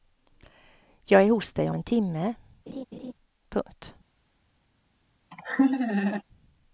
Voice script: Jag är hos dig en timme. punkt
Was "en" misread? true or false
false